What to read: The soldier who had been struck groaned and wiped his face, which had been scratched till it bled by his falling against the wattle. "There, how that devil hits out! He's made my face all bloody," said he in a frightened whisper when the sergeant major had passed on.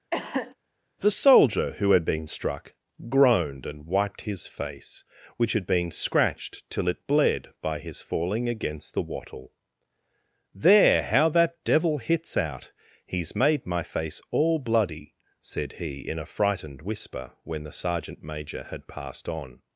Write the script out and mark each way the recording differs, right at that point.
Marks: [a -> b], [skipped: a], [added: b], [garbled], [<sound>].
[cough] The soldier who had been struck groaned and wiped his face, which had been scratched till it bled by his falling against the wattle. "There, how that devil hits out! He's made my face all bloody," said he in a frightened whisper when the sergeant major had passed on.